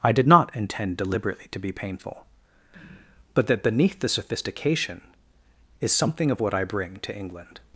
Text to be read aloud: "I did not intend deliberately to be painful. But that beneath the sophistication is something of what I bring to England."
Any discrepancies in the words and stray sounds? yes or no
no